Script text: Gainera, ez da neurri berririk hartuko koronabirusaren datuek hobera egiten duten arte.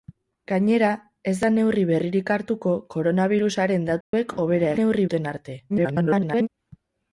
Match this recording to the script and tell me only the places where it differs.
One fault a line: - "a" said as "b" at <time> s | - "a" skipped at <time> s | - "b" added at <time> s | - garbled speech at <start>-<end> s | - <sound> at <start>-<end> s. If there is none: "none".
- dropout at 4.0-4.1 s
- "egiten" said as "neurri" at 4.8 s
- garbled speech at 5.7-6.5 s